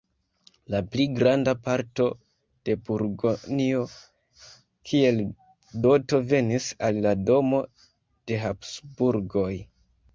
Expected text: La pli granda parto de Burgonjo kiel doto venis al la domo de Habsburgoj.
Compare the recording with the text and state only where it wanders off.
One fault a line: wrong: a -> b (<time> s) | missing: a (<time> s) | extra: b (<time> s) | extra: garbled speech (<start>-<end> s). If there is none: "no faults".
no faults